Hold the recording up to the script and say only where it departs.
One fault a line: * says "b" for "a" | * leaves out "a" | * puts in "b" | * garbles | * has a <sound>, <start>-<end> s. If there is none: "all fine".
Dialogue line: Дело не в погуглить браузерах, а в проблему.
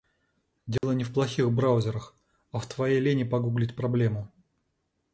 * has a dropout, 0.8-0.8 s
* says "плохих" for "погуглить"
* puts in "твоей лени погуглить"